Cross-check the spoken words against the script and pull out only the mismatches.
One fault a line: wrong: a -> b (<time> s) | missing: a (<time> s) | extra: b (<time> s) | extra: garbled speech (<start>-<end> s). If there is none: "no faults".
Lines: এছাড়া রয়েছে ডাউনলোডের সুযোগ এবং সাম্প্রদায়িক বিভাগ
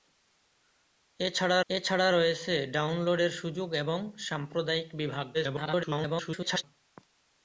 extra: এছাড়া (1.7 s)
extra: garbled speech (5.3-6.6 s)